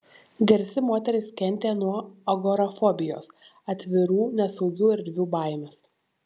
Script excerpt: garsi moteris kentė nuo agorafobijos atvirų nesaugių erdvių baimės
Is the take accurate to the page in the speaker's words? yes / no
yes